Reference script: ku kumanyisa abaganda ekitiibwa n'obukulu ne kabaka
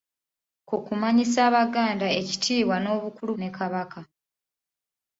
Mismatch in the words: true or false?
false